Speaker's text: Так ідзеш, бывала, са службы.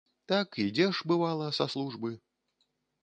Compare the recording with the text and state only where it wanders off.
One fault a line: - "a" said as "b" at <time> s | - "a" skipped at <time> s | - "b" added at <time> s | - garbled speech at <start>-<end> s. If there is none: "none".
none